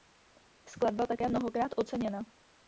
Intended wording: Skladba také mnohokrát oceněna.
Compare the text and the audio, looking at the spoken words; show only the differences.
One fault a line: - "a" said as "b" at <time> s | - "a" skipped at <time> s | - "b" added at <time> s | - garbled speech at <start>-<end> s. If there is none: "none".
none